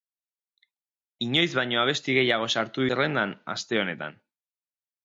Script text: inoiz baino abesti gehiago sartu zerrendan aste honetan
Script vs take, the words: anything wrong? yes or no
no